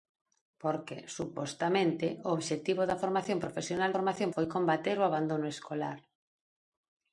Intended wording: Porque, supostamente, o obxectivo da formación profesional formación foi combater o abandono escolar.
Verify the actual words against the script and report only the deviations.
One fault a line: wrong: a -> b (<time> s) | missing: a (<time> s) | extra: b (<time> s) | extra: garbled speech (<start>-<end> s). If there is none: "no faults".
no faults